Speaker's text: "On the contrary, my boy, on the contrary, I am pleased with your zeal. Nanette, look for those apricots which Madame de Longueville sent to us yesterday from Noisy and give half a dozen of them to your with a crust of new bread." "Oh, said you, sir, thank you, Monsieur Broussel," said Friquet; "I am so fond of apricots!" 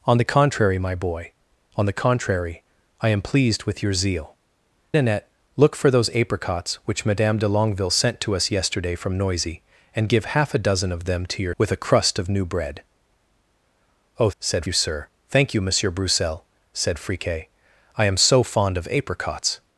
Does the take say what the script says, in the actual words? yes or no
yes